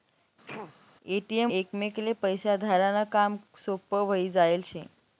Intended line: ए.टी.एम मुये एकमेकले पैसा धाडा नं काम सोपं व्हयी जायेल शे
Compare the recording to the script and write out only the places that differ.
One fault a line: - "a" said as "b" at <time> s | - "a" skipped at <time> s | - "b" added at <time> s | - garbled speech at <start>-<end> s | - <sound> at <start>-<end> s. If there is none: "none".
- sneeze at 0.5-0.8 s
- "मुये" skipped at 1.5 s